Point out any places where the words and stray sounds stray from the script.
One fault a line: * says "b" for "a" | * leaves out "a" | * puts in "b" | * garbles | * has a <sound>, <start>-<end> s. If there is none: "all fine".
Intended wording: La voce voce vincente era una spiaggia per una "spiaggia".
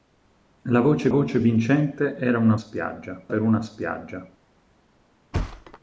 * has a thud, 5.3-5.8 s